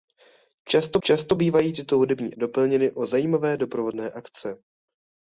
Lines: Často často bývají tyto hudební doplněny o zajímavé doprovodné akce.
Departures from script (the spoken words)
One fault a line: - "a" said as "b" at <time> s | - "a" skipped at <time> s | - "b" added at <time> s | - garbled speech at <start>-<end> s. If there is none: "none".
none